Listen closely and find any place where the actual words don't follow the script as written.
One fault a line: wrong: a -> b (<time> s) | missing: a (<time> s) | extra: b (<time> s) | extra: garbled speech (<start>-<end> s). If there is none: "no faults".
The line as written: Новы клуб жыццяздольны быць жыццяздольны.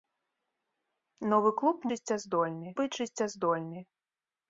no faults